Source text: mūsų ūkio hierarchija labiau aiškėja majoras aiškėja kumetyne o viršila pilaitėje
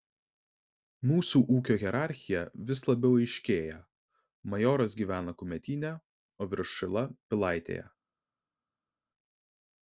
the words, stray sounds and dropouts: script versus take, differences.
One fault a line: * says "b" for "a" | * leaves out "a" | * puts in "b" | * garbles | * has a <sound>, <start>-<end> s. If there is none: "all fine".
* puts in "vis"
* says "gyvena" for "aiškėja"